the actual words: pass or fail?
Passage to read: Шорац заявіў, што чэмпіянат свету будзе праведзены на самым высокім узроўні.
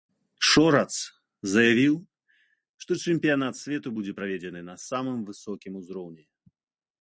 pass